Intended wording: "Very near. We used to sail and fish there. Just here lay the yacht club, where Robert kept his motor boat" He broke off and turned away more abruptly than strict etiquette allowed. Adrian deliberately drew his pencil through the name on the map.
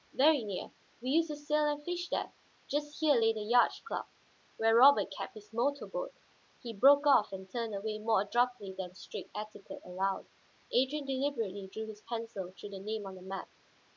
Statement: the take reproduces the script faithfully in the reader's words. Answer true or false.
true